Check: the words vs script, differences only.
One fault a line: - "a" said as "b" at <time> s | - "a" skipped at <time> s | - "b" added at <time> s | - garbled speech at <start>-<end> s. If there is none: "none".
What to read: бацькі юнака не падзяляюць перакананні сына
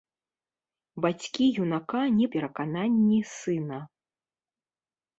- "падзяляюць" skipped at 2.3 s